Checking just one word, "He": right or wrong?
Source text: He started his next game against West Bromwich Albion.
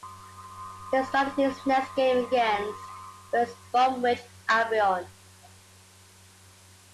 right